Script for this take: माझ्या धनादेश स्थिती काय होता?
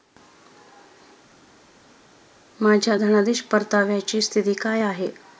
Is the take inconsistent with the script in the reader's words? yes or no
yes